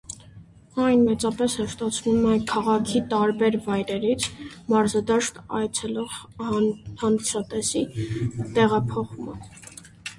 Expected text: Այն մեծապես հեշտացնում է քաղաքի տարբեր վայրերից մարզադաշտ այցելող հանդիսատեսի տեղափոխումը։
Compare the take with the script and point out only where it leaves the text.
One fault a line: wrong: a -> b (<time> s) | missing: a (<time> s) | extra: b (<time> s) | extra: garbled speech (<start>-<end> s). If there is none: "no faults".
no faults